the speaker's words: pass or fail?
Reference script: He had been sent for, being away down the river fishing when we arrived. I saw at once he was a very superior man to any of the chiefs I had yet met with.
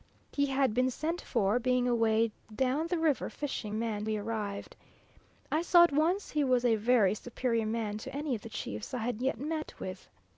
fail